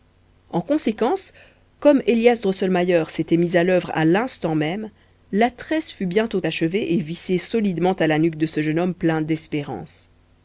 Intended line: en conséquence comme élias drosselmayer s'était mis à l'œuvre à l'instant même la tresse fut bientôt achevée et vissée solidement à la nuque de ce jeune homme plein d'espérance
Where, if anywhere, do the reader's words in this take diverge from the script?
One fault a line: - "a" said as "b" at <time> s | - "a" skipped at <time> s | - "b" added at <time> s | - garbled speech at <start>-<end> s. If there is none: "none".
none